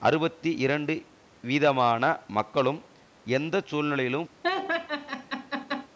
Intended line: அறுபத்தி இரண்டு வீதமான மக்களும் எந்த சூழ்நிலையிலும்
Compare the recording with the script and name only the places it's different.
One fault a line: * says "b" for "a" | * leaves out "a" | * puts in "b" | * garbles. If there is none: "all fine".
all fine